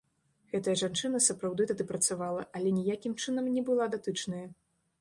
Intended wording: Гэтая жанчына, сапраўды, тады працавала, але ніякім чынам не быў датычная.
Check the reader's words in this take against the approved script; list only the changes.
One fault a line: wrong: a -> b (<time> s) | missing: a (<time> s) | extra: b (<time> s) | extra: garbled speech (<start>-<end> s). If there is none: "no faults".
wrong: быў -> была (3.7 s)